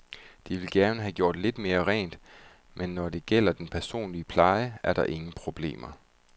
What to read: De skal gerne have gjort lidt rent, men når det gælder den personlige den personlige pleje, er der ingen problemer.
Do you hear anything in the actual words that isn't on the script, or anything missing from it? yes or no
yes